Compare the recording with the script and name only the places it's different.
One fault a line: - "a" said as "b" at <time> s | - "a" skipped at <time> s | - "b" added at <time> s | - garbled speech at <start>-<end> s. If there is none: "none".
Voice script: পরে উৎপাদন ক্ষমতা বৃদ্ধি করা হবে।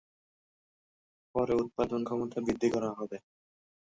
none